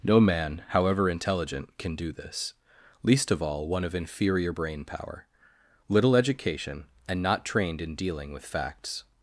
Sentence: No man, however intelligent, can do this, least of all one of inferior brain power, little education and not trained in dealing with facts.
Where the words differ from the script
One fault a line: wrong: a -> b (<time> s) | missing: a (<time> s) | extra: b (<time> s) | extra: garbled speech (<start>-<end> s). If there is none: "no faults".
no faults